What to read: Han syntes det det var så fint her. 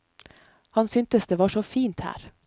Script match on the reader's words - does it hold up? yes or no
no